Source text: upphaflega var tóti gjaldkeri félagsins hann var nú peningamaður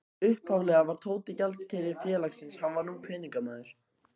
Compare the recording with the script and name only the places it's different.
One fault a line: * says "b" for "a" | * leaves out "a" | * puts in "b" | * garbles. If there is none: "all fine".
all fine